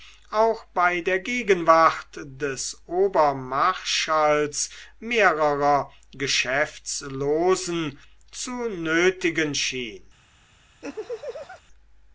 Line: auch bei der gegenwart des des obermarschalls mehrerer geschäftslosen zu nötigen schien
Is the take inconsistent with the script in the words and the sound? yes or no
yes